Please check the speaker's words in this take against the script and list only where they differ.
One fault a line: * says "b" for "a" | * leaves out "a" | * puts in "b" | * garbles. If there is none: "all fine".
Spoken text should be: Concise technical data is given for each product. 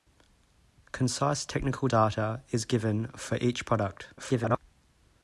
* garbles